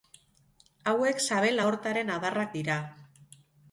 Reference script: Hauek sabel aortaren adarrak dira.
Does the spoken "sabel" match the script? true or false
true